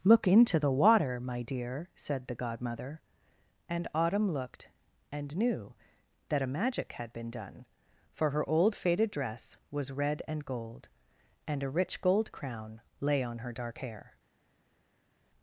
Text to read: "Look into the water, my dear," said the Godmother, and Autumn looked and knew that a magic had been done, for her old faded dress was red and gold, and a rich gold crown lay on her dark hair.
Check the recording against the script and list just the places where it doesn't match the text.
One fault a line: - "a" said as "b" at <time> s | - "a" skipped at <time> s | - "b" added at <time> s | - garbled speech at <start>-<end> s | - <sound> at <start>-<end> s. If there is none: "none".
none